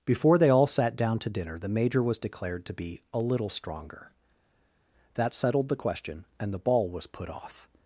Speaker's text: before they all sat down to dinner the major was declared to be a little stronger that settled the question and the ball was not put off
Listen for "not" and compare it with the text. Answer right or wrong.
wrong